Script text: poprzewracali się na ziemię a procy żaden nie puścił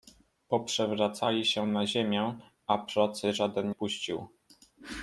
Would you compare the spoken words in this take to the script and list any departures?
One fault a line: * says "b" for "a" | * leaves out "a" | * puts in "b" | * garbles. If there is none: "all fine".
* leaves out "nie"